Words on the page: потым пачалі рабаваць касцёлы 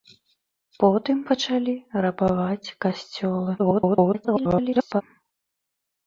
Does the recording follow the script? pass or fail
fail